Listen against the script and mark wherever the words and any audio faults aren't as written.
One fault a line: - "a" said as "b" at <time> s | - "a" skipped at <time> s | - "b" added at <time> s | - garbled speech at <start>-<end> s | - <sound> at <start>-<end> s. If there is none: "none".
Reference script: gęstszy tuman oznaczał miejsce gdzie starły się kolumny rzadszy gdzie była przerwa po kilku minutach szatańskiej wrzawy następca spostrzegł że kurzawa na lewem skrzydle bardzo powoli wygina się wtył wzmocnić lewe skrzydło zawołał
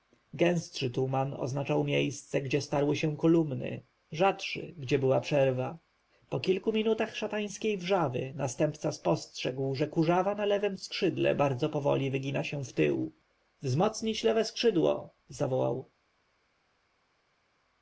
none